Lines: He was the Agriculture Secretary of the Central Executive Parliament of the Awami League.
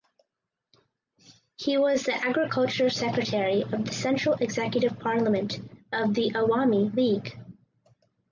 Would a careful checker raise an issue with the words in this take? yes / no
no